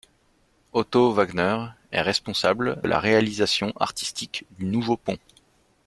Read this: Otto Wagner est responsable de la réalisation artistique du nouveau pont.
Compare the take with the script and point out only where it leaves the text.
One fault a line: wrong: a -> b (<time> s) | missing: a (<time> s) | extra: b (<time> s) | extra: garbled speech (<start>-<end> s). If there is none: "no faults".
missing: de (2.8 s)